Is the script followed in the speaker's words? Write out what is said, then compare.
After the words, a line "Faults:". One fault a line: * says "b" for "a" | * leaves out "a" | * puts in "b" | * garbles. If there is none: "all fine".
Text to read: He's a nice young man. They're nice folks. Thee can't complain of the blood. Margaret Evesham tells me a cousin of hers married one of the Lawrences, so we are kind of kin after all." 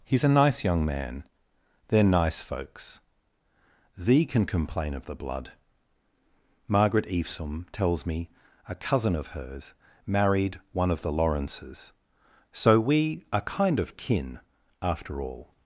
He's a nice young man. They're nice folks. Thee can complain of the blood. Margaret Evesham tells me a cousin of hers married one of the Lawrences, so we are kind of kin after all."
Faults:
* says "can" for "can't"